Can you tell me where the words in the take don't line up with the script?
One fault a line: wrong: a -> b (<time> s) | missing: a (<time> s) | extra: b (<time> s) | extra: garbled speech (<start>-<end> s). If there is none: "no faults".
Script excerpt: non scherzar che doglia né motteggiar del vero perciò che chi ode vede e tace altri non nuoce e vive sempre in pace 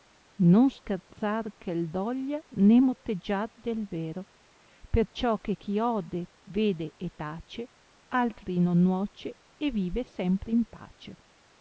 no faults